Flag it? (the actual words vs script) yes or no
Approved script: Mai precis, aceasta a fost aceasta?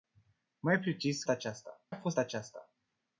no